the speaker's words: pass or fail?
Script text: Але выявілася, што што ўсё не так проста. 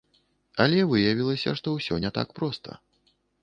fail